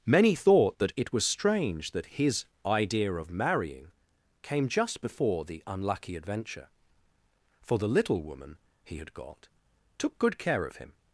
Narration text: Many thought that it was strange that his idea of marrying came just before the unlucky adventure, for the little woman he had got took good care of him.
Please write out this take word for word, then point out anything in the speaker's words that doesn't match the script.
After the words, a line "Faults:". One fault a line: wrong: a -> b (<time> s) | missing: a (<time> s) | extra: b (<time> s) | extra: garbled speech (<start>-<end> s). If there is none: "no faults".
Many thought that it was strange that his idea of marrying came just before the unlucky adventure, for the little woman he had got took good care of him.
Faults:
no faults